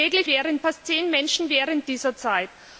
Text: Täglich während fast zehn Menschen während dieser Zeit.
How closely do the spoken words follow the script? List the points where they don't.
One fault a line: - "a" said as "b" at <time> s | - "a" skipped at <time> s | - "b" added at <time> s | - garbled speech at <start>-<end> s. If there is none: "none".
none